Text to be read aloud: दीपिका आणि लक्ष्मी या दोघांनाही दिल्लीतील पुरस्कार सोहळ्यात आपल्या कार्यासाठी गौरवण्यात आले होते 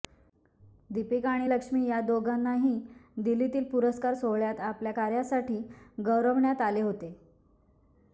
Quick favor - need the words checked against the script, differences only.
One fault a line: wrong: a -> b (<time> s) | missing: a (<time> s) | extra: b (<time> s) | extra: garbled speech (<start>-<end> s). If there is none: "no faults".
no faults